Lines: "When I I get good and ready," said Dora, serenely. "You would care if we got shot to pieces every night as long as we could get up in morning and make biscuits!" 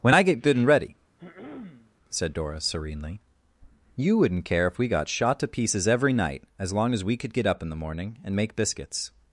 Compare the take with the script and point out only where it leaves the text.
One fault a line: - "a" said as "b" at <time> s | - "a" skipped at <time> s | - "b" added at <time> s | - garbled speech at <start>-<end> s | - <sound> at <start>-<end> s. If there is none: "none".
- "I" skipped at 0.2 s
- throat clearing at 1.2-1.9 s
- "would" said as "wouldn't" at 4.2 s
- "the" added at 7.7 s